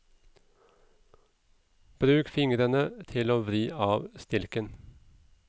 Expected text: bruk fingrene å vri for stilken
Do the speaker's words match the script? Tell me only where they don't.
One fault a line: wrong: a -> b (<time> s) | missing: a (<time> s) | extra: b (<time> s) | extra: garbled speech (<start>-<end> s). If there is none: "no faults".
extra: til (3.1 s)
wrong: for -> av (3.9 s)